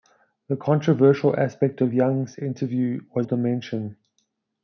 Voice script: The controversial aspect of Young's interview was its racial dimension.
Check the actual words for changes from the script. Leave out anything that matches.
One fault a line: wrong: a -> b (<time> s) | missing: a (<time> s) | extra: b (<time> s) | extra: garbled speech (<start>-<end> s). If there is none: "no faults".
missing: its racial (3.3 s)